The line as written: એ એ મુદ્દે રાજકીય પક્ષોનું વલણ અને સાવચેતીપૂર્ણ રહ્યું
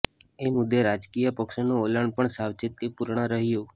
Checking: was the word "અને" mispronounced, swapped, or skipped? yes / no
yes